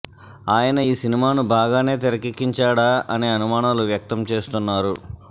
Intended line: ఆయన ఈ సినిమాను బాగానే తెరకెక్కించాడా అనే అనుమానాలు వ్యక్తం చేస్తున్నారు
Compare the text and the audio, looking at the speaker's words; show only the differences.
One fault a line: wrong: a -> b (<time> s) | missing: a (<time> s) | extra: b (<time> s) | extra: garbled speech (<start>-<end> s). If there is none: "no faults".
no faults